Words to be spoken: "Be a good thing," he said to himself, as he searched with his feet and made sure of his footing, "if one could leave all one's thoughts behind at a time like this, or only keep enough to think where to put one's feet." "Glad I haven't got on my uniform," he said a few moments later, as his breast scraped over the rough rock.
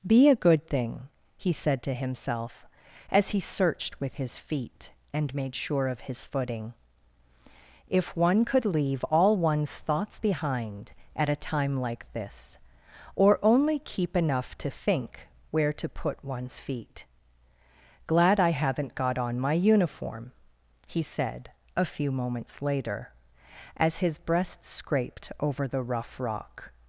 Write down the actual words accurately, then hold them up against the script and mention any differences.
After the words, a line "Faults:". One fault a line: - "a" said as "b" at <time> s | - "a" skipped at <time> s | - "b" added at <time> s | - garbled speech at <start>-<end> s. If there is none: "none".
"Be a good thing," he said to himself, as he searched with his feet and made sure of his footing, "if one could leave all one's thoughts behind at a time like this, or only keep enough to think where to put one's feet." "Glad I haven't got on my uniform," he said a few moments later, as his breast scraped over the rough rock.
Faults:
none